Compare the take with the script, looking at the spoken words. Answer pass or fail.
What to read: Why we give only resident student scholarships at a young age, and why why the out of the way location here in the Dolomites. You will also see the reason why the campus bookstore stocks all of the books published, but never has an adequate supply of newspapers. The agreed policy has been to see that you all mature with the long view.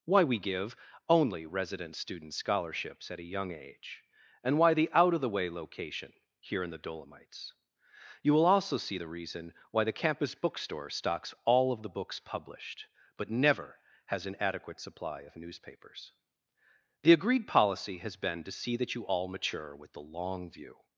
fail